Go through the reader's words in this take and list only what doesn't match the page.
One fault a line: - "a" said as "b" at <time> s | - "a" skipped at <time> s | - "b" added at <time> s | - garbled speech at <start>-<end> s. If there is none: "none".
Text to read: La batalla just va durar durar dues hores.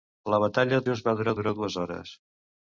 none